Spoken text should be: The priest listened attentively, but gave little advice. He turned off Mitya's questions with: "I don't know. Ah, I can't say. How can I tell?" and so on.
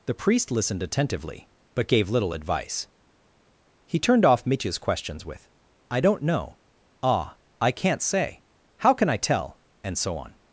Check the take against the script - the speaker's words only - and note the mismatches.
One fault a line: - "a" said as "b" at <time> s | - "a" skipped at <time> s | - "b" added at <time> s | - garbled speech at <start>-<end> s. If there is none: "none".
none